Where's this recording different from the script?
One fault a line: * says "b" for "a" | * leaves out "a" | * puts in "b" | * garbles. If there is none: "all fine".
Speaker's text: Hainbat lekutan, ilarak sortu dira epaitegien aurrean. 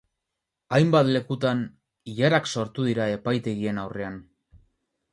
all fine